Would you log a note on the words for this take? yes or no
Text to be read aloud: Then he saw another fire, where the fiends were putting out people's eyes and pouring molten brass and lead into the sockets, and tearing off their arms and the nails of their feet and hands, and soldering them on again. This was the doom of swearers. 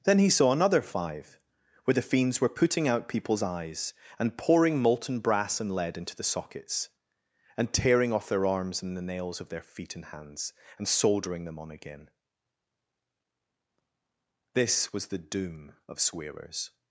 yes